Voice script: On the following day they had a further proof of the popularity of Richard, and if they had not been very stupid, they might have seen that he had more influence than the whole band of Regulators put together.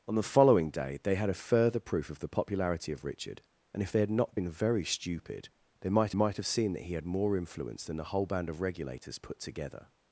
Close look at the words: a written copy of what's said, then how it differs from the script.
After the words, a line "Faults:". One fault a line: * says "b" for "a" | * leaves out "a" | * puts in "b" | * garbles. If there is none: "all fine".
On the following day they had a further proof of the popularity of Richard, and if they had not been very stupid, they might might have seen that he had more influence than the whole band of Regulators put together.
Faults:
* puts in "might"